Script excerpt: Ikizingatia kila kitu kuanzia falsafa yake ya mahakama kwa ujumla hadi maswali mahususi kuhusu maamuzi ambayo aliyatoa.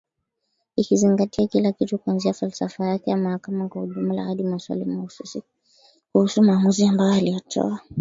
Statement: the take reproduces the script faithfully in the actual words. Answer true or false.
true